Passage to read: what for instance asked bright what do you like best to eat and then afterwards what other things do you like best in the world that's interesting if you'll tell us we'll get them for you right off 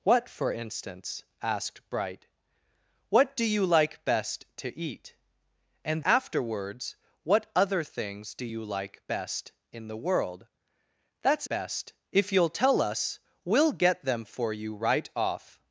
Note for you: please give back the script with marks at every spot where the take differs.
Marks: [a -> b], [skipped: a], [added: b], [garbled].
what for instance asked bright what do you like best to eat and [skipped: then] afterwards what other things do you like best in the world that's [interesting -> best] if you'll tell us we'll get them for you right off